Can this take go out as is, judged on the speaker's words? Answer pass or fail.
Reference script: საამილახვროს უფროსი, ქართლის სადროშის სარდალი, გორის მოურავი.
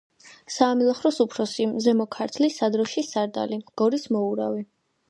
fail